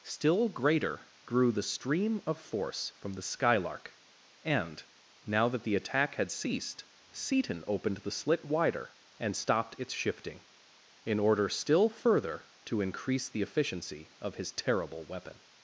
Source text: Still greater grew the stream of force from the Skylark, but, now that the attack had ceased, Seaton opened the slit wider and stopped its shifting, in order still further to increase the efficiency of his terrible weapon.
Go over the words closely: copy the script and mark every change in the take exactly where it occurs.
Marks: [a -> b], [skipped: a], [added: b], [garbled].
Still greater grew the stream of force from the Skylark, [but, -> and] now that the attack had ceased, Seaton opened the slit wider and stopped its shifting, in order still further to increase the efficiency of his terrible weapon.